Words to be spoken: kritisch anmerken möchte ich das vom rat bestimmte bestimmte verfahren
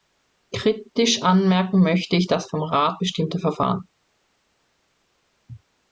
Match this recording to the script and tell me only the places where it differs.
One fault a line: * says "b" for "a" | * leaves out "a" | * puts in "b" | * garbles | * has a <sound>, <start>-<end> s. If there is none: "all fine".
* leaves out "bestimmte"